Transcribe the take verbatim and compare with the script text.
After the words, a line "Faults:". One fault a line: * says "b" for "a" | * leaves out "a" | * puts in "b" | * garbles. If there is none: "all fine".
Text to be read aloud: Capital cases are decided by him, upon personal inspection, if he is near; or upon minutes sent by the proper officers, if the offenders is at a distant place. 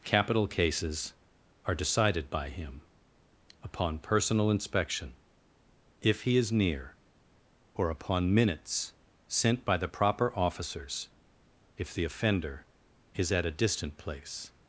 Capital cases are decided by him, upon personal inspection, if he is near; or upon minutes sent by the proper officers, if the offender is at a distant place.
Faults:
* says "offender" for "offenders"